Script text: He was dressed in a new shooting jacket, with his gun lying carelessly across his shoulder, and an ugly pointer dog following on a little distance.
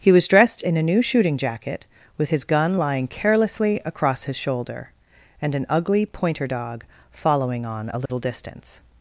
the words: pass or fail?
pass